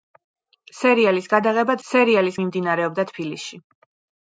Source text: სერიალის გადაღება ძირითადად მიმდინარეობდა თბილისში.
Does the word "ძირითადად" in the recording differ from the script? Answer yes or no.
yes